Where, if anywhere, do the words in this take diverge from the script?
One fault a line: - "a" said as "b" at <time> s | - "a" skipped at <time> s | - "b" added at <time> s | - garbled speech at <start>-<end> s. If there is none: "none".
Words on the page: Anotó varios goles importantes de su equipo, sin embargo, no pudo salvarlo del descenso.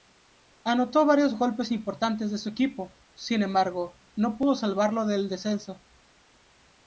none